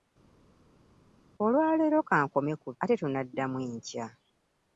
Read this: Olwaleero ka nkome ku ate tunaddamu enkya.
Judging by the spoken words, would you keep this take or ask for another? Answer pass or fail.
pass